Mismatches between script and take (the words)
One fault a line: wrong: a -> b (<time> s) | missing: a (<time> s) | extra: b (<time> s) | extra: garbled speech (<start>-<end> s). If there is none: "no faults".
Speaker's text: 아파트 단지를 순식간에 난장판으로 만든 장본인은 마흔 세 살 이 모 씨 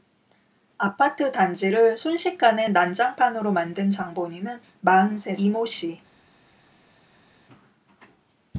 missing: 살 (5.3 s)